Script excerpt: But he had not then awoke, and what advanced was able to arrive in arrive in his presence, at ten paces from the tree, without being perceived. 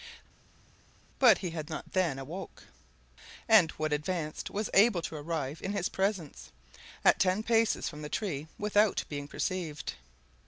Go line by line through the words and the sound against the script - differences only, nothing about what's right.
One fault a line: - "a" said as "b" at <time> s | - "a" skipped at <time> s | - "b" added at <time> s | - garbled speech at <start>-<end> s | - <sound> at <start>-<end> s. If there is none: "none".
- "arrive in" skipped at 5.7 s